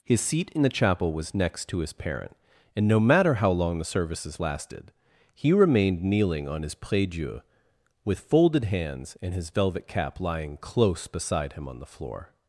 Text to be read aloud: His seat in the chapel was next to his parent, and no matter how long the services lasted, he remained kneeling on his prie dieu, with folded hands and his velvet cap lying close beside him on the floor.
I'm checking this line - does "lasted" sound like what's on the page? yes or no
yes